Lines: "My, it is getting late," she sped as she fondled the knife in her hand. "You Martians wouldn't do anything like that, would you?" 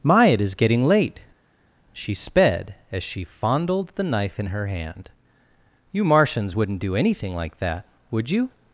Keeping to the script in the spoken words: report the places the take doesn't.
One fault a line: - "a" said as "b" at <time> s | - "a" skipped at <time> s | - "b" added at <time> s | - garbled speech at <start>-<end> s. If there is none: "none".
none